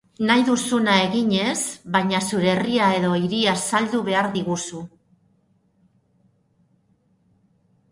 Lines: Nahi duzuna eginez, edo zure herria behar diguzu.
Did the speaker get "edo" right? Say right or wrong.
wrong